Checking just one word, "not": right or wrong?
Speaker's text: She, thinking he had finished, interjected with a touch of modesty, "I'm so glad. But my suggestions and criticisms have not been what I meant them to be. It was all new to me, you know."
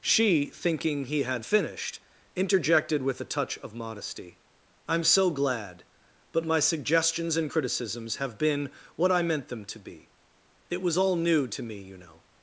wrong